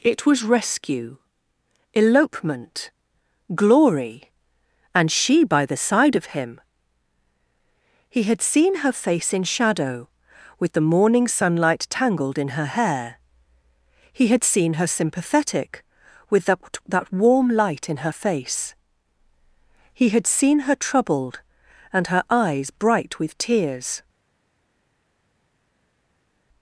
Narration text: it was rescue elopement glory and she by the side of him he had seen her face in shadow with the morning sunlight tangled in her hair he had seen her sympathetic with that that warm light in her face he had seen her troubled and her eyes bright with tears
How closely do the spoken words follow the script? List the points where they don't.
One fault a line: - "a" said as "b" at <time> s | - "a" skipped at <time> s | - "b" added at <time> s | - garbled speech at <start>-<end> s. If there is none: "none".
none